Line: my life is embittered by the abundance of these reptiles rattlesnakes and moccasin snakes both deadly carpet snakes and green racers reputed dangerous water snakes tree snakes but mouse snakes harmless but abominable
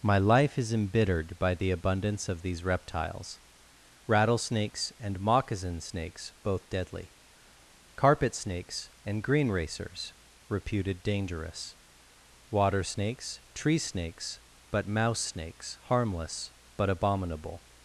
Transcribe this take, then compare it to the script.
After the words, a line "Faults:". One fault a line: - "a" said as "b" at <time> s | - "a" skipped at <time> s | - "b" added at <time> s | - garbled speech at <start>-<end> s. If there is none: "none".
my life is embittered by the abundance of these reptiles rattlesnakes and moccasin snakes both deadly carpet snakes and green racers reputed dangerous water snakes tree snakes but mouse snakes harmless but abominable
Faults:
none